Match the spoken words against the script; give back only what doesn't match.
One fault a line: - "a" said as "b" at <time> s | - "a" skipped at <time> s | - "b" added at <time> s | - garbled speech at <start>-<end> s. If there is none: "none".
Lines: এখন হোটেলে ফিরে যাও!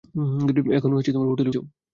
- "ফিরে" skipped at 1.5 s